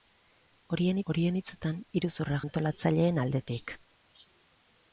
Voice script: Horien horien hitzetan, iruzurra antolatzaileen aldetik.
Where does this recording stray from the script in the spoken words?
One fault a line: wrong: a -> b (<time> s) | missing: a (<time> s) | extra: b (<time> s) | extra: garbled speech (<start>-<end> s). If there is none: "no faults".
no faults